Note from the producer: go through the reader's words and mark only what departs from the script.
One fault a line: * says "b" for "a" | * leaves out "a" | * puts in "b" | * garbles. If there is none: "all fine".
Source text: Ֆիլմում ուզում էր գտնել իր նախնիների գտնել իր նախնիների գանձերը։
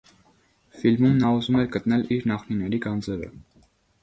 * puts in "նա"
* leaves out "գտնել իր նախնիների"